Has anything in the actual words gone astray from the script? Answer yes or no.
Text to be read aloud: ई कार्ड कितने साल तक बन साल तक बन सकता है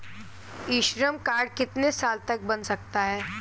yes